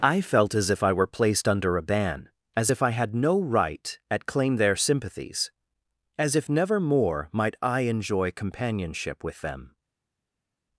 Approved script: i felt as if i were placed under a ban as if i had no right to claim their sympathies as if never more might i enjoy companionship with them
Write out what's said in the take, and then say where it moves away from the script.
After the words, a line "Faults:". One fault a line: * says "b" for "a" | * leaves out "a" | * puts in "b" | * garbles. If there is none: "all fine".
i felt as if i were placed under a ban as if i had no right at claim their sympathies as if never more might i enjoy companionship with them
Faults:
* says "at" for "to"